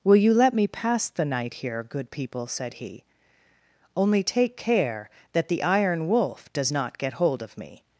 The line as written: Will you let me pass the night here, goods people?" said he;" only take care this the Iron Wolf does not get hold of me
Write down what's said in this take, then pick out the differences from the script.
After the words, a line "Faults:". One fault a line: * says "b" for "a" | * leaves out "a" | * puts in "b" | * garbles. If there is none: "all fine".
Will you let me pass the night here, good people?" said he;" only take care that the Iron Wolf does not get hold of me
Faults:
* says "good" for "goods"
* says "that" for "this"